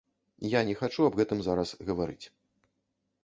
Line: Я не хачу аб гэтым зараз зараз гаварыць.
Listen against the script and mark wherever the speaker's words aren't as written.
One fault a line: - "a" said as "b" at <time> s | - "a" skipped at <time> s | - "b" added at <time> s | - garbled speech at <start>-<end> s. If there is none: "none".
- "зараз" skipped at 1.7 s